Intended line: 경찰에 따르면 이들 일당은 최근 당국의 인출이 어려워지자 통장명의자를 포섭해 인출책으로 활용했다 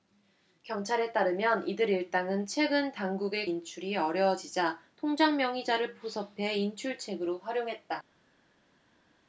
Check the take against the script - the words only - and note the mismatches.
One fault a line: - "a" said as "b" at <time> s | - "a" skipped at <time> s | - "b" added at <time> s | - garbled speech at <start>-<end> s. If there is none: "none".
none